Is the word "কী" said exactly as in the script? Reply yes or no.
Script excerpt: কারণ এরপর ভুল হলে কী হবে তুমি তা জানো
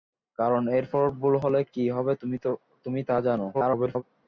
yes